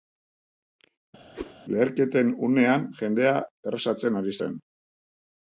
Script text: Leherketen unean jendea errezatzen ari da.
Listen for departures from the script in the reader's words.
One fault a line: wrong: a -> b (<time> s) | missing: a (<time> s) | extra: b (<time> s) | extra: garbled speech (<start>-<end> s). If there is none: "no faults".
wrong: da -> zen (4.4 s)